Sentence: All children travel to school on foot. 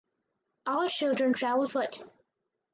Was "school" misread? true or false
true